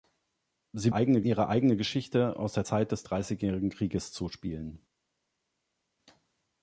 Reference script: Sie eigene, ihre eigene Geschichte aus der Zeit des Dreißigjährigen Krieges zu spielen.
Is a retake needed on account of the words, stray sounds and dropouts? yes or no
no